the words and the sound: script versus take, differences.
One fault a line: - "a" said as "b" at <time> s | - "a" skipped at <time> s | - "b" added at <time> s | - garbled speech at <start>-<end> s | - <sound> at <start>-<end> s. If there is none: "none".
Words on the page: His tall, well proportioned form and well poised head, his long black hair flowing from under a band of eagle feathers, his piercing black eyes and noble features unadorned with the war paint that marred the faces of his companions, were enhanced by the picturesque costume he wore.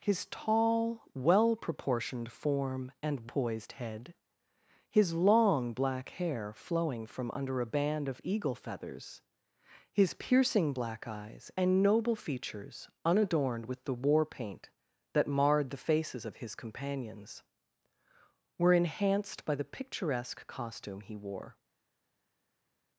- "well" skipped at 3.3 s